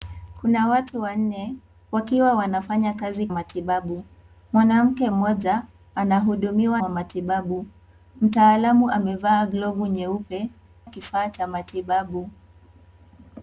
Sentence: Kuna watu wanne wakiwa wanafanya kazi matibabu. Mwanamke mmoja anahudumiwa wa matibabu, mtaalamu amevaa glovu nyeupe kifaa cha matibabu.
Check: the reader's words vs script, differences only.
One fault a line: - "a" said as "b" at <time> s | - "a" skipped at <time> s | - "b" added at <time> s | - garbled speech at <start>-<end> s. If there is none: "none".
none